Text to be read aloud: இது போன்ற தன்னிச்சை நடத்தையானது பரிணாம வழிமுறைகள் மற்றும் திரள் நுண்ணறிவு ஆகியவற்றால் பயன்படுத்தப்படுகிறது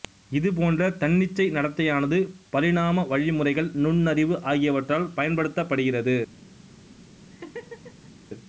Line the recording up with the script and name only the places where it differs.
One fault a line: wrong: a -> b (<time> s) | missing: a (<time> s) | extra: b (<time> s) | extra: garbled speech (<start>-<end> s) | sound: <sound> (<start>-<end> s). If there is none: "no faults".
missing: மற்றும் திரள் (3.7 s)
sound: laugh (7.3-8.1 s)